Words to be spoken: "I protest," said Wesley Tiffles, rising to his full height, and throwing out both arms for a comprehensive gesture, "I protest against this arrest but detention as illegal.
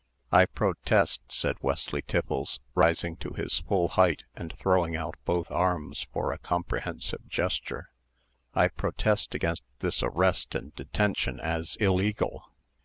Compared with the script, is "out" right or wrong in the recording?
right